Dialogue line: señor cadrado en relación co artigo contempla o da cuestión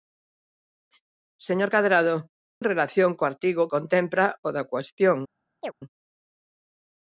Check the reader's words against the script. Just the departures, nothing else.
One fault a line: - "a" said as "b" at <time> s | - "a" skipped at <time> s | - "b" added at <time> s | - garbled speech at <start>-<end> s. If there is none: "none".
none